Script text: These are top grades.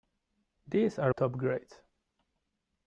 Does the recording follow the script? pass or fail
pass